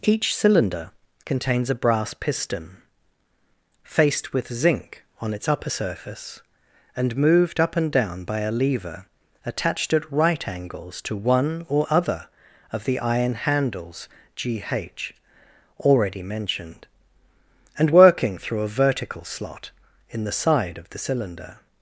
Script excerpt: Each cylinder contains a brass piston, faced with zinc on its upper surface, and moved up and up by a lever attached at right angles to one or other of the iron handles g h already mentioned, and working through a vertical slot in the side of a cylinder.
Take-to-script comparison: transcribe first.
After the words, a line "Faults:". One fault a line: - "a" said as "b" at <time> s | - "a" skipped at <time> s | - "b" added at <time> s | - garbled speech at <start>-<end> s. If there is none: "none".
Each cylinder contains a brass piston, faced with zinc on its upper surface, and moved up and down by a lever attached at right angles to one or other of the iron handles g h already mentioned, and working through a vertical slot in the side of the cylinder.
Faults:
- "up" said as "down" at 7.9 s
- "a" said as "the" at 20.9 s